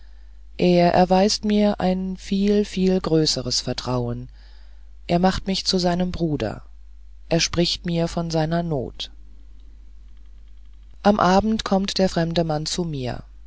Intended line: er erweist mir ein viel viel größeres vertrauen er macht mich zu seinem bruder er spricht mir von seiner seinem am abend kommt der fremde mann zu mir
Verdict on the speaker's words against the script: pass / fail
fail